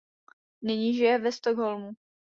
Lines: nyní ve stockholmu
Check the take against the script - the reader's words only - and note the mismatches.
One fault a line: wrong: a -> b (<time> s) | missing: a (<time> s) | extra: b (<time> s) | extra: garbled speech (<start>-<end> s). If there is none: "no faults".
extra: žije (0.9 s)